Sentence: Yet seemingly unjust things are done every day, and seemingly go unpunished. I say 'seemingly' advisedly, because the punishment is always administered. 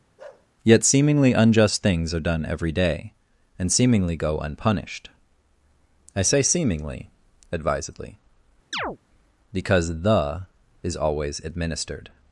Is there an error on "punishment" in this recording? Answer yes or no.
yes